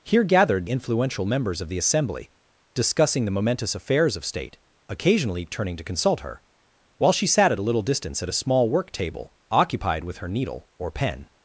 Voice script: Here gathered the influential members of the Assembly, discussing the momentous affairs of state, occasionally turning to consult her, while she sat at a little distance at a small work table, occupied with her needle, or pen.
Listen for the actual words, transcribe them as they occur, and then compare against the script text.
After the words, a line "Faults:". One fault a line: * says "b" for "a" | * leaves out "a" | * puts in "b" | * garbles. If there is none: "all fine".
Here gathered influential members of the Assembly, discussing the momentous affairs of state, occasionally turning to consult her, while she sat at a little distance at a small work table, occupied with her needle, or pen.
Faults:
* leaves out "the"